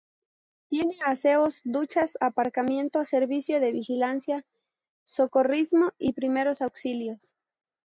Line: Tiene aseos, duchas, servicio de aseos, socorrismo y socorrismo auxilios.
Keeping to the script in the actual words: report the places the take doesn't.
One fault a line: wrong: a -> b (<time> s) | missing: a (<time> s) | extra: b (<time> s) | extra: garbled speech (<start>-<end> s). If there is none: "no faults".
extra: aparcamiento (2.2 s)
wrong: aseos -> vigilancia (3.7 s)
wrong: socorrismo -> primeros (6.1 s)